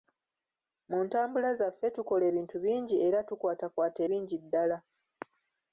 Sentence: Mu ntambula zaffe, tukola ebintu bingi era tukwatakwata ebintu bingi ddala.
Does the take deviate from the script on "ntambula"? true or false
false